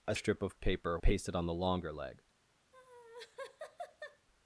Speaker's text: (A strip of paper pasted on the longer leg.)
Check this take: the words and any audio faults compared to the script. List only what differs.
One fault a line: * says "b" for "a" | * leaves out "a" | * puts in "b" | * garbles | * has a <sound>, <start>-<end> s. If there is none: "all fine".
* has a laugh, 2.7-4.3 s